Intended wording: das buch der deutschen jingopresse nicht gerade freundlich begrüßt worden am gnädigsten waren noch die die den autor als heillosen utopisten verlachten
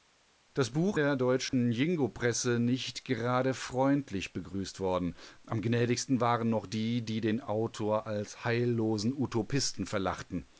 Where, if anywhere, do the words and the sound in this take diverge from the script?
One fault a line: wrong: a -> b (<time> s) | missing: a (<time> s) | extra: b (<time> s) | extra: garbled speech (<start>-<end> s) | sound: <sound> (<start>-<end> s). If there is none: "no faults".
sound: dropout (1.5-1.5 s)